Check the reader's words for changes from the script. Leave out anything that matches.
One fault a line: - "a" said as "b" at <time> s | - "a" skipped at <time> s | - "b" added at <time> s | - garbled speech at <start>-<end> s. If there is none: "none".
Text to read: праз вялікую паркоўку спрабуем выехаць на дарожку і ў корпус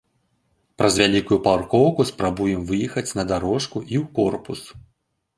none